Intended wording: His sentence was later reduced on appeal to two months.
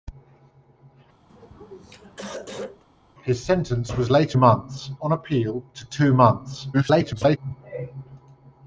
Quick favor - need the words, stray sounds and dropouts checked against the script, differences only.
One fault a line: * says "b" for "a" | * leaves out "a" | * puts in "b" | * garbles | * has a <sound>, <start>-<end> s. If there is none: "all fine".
* has a throat clearing, 1.3-2.8 s
* says "months" for "reduced"
* garbles